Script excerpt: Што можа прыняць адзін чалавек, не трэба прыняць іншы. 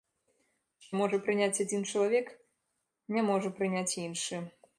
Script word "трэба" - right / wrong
wrong